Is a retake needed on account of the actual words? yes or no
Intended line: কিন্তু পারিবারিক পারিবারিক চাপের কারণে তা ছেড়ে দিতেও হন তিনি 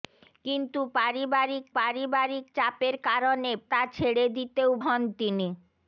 no